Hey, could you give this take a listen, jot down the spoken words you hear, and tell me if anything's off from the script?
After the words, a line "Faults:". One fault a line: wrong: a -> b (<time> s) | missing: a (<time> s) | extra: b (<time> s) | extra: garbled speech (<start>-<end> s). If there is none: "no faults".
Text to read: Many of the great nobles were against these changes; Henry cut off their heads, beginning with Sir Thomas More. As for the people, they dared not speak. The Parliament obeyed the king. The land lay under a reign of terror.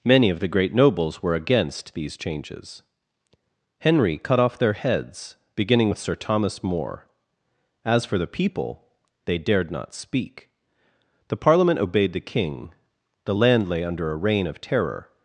Many of the great nobles were against these changes; Henry cut off their heads, beginning with Sir Thomas More. As for the people, they dared not speak. The Parliament obeyed the king. The land lay under a reign of terror.
Faults:
no faults